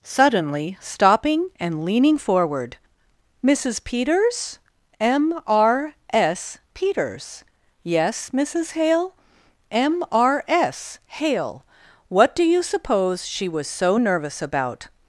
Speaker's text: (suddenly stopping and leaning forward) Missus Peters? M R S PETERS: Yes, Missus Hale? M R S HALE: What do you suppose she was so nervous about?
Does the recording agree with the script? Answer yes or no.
yes